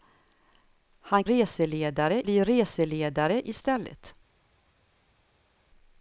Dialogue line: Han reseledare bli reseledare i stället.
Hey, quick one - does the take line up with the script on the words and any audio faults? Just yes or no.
yes